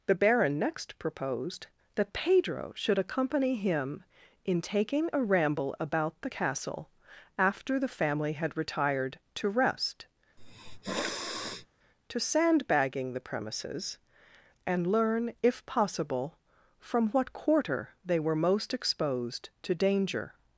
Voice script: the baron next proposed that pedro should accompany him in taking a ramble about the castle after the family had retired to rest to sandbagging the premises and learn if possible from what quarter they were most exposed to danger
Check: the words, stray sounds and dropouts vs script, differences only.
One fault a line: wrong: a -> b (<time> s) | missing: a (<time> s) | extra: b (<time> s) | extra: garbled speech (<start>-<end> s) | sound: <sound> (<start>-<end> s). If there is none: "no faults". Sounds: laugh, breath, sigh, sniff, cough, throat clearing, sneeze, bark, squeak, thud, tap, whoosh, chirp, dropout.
sound: sniff (10.4-11.7 s)